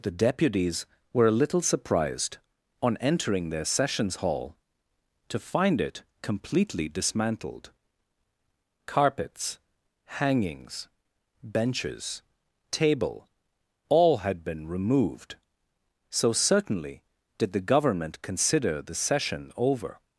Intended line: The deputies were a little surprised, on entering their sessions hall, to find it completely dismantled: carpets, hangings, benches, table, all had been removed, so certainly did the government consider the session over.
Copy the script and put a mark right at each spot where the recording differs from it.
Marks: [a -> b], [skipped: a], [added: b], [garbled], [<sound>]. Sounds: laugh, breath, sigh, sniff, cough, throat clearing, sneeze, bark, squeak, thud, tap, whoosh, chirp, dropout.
The deputies were a little surprised, on entering their sessions hall, to find it completely dismantled: carpets, hangings, benches, table, all had been removed, so certainly did the government consider the session over.